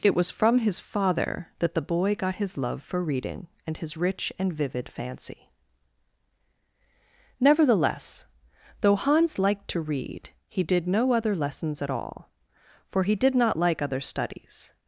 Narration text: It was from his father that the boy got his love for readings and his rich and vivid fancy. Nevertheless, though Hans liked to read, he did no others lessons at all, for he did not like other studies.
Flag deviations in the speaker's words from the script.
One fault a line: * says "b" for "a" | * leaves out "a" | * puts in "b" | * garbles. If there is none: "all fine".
* says "reading" for "readings"
* says "other" for "others"